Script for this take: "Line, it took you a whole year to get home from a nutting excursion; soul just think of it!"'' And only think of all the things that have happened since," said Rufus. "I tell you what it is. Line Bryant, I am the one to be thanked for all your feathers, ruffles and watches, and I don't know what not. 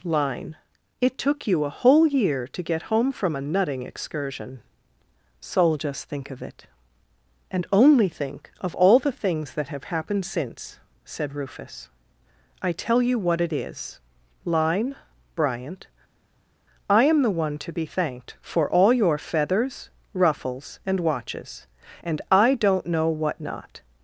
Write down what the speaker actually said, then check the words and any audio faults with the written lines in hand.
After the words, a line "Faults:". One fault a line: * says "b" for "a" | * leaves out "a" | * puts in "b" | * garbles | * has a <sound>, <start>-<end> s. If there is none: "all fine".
"Line, it took you a whole year to get home from a nutting excursion; soul just think of it!"'' And only think of all the things that have happened since," said Rufus. "I tell you what it is. Line Bryant, I am the one to be thanked for all your feathers, ruffles and watches, and I don't know what not.
Faults:
all fine